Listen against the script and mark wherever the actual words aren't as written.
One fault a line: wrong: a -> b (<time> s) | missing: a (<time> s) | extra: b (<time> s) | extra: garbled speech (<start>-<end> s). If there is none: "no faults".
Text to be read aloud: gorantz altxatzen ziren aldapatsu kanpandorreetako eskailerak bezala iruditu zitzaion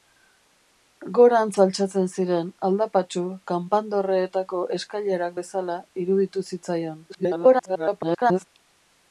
extra: garbled speech (7.1-8.5 s)